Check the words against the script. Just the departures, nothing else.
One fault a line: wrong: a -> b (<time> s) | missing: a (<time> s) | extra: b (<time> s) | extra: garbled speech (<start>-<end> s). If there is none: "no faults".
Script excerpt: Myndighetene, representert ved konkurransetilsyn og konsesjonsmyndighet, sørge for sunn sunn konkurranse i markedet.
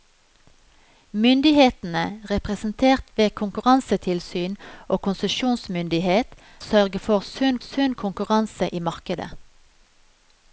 no faults